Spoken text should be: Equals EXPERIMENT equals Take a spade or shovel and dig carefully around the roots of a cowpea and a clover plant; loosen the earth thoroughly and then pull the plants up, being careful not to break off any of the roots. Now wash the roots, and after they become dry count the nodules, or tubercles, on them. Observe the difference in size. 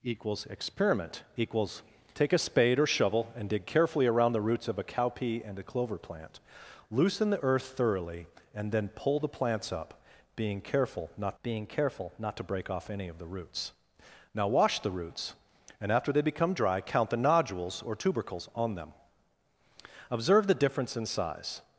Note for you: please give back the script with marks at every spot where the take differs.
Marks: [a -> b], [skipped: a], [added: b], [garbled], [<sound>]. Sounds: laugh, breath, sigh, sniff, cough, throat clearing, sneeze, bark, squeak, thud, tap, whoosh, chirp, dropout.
Equals EXPERIMENT equals Take a spade or shovel and dig carefully around the roots of a cowpea and a clover plant; loosen the earth thoroughly and then pull the plants up, being careful not [added: being careful not] to break off any of the roots. Now wash the roots, and after they become dry count the nodules, or tubercles, on them. Observe the difference in size.